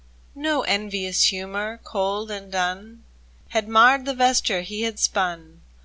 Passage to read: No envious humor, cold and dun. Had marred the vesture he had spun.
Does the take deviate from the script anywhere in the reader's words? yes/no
no